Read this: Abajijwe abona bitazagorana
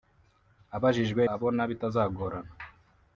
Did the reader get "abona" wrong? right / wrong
right